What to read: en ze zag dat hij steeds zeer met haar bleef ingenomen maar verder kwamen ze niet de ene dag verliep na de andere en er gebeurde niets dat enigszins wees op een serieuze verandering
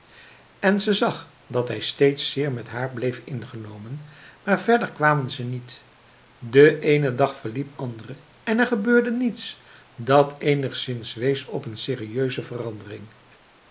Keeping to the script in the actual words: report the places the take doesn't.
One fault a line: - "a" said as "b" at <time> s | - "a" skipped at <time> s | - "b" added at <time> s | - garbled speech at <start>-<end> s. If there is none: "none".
- "na de" skipped at 7.8 s